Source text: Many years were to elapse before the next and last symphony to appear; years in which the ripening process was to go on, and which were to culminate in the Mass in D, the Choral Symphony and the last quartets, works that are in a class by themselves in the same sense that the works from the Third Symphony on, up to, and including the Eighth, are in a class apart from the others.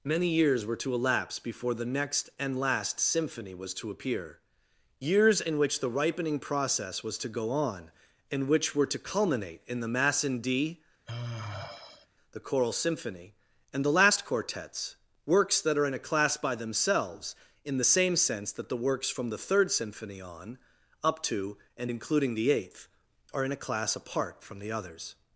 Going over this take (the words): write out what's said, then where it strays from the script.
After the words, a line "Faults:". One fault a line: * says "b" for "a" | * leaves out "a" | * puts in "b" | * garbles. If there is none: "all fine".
Many years were to elapse before the next and last symphony was to appear; years in which the ripening process was to go on, and which were to culminate in the Mass in D, the Choral Symphony and the last quartets, works that are in a class by themselves in the same sense that the works from the Third Symphony on, up to, and including the Eighth, are in a class apart from the others.
Faults:
* puts in "was"